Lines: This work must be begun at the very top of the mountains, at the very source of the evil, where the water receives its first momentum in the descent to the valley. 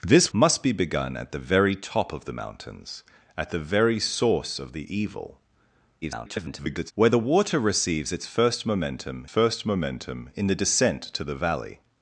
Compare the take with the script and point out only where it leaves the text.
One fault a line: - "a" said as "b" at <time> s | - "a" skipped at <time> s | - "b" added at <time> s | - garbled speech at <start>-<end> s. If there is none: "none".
- "work" skipped at 0.3 s
- garbled speech at 6.0-6.9 s
- "first momentum" added at 9.2 s